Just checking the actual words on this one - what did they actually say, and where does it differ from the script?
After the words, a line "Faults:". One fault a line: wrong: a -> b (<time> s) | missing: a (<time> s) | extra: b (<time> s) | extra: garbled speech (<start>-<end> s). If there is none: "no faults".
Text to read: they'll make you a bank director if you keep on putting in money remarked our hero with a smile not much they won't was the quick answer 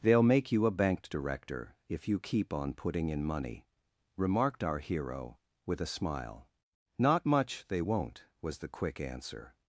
they'll make you a bank director if you keep on putting in money remarked our hero with a smile not much they won't was the quick answer
Faults:
no faults